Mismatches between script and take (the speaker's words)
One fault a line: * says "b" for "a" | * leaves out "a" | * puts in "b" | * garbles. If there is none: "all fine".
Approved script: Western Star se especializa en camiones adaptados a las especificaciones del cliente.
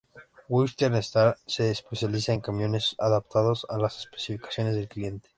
all fine